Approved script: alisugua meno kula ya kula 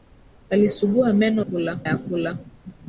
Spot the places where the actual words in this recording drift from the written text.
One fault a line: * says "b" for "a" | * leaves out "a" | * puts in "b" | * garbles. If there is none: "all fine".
all fine